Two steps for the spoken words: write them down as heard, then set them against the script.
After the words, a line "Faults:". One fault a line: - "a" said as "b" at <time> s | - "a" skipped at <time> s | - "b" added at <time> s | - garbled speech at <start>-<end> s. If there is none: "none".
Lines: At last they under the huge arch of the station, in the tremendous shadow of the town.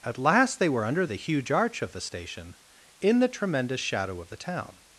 At last they were under the huge arch of the station, in the tremendous shadow of the town.
Faults:
- "were" added at 0.7 s